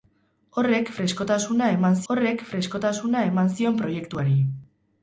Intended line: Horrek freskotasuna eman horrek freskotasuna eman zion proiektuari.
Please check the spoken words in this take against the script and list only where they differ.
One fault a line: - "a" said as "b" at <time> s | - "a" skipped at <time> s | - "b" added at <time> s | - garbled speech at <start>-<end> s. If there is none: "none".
none